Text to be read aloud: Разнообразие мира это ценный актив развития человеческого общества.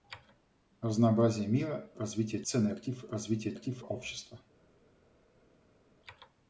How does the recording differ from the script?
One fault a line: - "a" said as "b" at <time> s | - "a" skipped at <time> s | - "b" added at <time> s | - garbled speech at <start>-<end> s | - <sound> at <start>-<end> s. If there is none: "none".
- "это" said as "развития" at 2.0 s
- "человеческого" said as "актив" at 3.5 s